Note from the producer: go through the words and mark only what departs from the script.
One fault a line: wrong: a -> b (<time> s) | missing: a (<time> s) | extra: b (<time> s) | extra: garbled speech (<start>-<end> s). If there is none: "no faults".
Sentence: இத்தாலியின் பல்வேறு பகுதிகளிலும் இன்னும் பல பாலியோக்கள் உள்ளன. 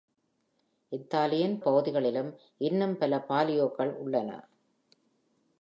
missing: பல்வேறு (1.6 s)